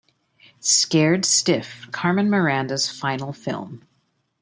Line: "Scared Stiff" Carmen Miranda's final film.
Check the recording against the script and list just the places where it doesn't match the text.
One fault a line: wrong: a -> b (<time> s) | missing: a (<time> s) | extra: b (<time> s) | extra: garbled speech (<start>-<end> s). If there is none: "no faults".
no faults